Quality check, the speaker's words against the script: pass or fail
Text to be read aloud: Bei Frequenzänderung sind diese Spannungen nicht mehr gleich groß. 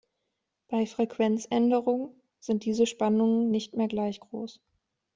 pass